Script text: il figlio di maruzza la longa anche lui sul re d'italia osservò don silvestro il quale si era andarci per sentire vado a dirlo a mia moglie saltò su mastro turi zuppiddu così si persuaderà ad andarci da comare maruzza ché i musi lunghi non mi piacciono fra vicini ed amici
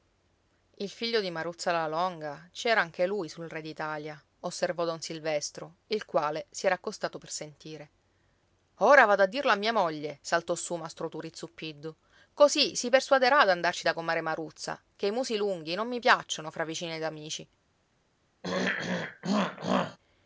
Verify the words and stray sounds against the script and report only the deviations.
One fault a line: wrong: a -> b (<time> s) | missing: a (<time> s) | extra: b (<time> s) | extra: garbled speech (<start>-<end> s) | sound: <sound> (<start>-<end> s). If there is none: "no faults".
extra: ci era (2.5 s)
wrong: andarci -> accostato (6.7 s)
extra: ora (8.8 s)
sound: throat clearing (18.4-20.0 s)